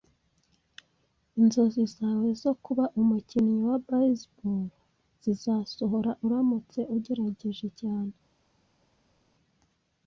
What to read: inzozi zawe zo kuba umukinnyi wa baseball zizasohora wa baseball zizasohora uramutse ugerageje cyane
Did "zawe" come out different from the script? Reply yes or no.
no